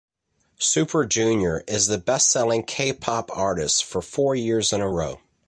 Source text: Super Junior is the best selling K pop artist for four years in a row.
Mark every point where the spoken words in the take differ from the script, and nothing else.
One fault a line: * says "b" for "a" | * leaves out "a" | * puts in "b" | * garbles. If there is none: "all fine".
all fine